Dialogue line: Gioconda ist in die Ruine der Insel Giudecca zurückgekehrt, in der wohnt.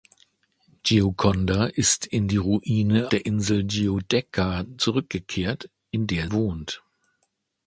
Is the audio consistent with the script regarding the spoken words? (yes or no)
yes